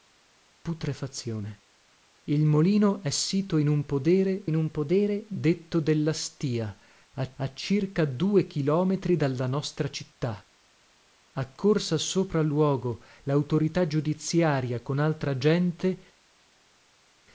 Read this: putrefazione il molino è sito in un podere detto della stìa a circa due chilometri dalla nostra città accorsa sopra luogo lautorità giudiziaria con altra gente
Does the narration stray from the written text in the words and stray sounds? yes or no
yes